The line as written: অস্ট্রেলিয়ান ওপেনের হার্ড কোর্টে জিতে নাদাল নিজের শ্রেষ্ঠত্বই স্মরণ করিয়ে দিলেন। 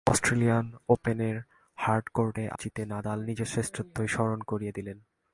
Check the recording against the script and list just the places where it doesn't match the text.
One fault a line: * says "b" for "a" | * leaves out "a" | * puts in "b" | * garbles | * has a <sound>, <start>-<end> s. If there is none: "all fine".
all fine